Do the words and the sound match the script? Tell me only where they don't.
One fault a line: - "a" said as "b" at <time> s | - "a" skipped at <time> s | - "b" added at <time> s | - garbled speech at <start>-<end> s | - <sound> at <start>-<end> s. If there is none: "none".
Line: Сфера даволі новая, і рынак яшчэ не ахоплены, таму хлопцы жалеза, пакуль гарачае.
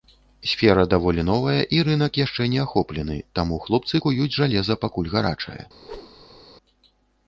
- "куюць" added at 4.0 s
- whoosh at 5.8-6.4 s